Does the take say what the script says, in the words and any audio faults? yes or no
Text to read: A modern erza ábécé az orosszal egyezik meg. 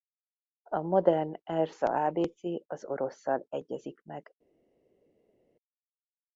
yes